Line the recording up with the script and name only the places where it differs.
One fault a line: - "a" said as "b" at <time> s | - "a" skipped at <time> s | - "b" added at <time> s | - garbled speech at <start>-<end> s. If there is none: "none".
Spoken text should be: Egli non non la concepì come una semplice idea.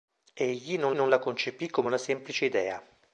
none